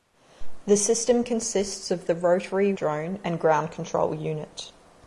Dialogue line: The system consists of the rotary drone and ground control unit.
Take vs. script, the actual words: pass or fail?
pass